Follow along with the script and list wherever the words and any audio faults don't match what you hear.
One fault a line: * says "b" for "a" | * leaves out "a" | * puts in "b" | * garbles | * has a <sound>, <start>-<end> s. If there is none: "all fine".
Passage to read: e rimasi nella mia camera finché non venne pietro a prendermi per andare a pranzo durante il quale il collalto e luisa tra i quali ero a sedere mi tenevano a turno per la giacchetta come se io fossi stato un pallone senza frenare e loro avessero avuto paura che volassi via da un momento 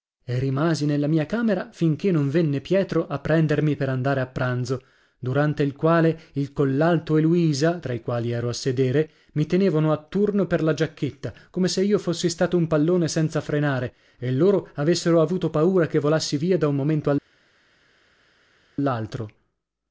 all fine